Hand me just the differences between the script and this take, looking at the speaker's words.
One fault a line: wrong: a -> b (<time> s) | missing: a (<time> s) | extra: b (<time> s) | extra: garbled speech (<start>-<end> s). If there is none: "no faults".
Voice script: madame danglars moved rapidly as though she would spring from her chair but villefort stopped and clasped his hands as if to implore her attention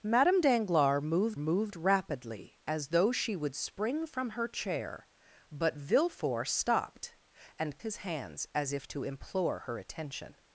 extra: moved (1.4 s)
missing: clasped (7.8 s)